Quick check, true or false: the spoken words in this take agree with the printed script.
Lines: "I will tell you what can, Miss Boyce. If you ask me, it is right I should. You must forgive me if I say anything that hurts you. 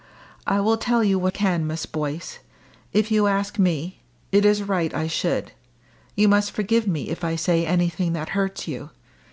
true